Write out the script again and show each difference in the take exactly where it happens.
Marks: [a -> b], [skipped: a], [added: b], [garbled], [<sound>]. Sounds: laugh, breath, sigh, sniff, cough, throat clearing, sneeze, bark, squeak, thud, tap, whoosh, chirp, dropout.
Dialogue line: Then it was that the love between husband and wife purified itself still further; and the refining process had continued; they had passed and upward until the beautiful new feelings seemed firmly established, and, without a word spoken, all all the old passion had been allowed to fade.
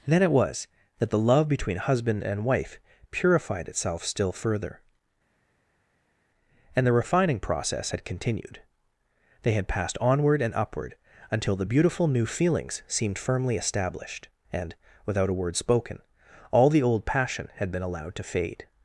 Then it was that the love between husband and wife purified itself still further; and the refining process had continued; they had passed [added: onward] and upward until the beautiful new feelings seemed firmly established, and, without a word spoken, all [skipped: all] the old passion had been allowed to fade.